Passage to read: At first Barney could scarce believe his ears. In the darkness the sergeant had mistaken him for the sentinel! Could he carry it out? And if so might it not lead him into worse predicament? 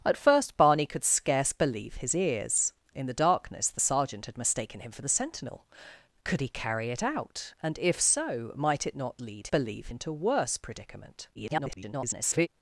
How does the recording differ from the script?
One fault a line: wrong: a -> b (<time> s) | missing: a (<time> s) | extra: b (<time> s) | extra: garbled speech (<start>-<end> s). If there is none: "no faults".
wrong: him -> believe (9.5 s)
extra: garbled speech (11.3-12.5 s)